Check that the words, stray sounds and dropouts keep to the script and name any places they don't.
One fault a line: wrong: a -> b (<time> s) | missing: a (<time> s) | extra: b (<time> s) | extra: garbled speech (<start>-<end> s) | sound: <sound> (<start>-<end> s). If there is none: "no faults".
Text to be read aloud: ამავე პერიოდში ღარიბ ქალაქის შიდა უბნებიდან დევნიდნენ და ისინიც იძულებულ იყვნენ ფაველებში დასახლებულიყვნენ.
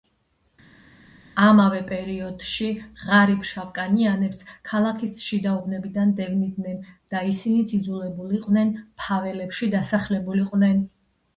extra: შავკანიანებს (3.5 s)